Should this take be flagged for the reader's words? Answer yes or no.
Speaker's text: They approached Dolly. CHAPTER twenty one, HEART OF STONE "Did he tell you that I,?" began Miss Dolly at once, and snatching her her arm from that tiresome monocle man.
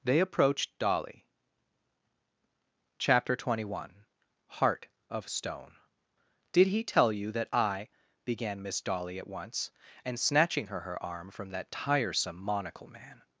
no